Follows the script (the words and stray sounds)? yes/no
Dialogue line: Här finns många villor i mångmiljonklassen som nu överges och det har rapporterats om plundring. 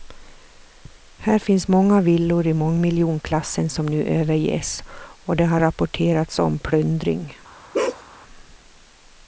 no